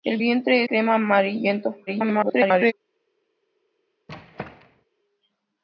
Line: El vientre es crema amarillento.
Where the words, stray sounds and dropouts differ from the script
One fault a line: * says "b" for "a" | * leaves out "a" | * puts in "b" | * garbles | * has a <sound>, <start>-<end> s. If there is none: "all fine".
* leaves out "es"
* garbles
* has a squeak, 4.1-4.9 s